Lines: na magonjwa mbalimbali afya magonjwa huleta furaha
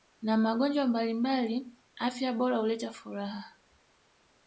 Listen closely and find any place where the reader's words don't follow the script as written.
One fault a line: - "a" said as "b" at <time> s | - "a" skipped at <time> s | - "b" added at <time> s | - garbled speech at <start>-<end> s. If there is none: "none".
- "magonjwa" said as "bora" at 2.3 s